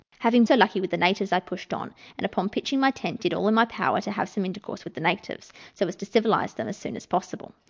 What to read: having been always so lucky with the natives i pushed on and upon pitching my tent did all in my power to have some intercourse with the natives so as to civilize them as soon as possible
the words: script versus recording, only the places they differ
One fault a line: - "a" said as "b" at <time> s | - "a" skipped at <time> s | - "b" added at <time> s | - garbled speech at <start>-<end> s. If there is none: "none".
- "been always" skipped at 0.5 s